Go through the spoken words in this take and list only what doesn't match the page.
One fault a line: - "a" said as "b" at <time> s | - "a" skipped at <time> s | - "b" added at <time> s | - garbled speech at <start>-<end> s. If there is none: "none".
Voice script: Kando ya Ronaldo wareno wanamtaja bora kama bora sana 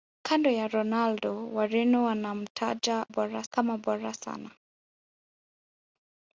none